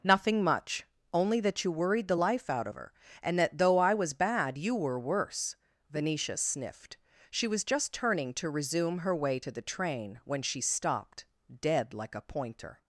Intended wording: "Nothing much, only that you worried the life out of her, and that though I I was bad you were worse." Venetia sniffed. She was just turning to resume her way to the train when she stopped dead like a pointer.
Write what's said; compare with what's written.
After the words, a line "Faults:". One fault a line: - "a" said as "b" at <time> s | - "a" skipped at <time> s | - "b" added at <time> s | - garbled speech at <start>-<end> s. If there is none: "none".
"Nothing much, only that you worried the life out of her, and that though I was bad you were worse." Venetia sniffed. She was just turning to resume her way to the train when she stopped dead like a pointer.
Faults:
- "I" skipped at 3.9 s